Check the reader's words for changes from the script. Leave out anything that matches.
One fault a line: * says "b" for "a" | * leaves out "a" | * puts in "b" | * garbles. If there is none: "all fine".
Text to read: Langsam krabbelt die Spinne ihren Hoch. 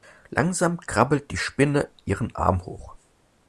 * puts in "Arm"